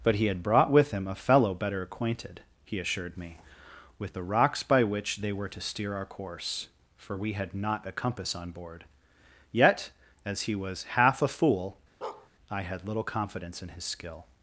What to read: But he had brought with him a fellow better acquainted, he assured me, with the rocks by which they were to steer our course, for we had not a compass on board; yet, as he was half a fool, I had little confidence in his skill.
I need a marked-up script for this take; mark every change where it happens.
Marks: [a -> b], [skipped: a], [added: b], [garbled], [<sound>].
But he had brought with him a fellow better acquainted, he assured me, with the rocks by which they were to steer our course, for we had not a compass on board; yet, as he was half a fool, [bark] I had little confidence in his skill.